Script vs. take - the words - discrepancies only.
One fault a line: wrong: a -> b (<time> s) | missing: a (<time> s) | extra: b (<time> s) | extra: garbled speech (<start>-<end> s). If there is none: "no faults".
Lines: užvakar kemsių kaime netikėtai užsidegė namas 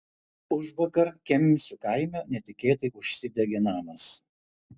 no faults